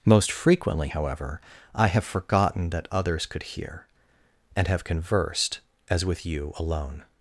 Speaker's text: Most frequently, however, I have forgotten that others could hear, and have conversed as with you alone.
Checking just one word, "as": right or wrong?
right